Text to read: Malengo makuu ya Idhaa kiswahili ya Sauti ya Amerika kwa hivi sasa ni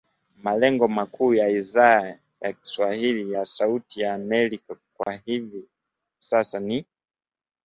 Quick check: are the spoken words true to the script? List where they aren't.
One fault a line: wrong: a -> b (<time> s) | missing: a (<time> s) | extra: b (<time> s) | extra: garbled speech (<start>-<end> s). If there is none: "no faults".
extra: ya (2.4 s)